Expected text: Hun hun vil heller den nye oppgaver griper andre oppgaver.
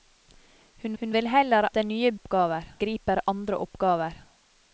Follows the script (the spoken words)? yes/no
yes